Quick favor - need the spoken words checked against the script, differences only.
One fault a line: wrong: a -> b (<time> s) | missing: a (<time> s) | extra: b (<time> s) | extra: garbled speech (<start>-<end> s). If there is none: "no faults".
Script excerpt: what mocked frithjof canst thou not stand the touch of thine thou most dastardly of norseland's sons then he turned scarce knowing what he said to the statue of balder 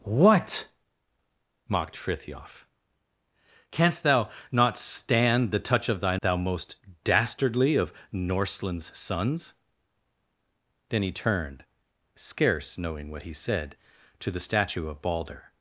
no faults